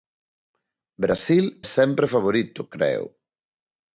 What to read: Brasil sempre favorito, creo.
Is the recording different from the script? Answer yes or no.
no